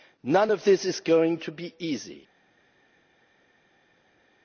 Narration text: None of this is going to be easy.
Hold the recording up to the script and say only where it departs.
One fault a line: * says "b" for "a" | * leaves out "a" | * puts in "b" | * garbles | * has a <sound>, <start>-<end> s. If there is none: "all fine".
all fine